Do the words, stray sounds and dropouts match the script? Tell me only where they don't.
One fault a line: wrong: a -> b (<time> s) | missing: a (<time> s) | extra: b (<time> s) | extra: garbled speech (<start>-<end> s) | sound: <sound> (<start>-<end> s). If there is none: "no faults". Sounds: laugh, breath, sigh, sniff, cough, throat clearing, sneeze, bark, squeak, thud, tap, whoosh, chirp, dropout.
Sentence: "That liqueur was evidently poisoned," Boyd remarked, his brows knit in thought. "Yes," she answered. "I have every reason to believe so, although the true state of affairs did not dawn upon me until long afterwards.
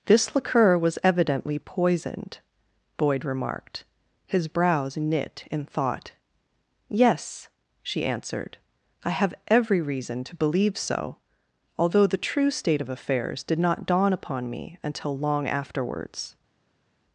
wrong: That -> This (0.1 s)